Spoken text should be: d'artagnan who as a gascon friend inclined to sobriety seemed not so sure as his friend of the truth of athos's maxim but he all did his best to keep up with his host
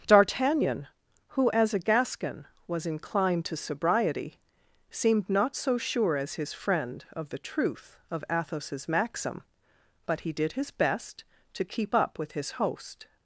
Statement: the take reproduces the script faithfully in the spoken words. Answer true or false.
false